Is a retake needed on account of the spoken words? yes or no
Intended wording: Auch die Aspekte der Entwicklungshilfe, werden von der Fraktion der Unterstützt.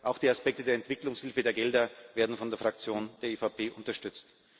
yes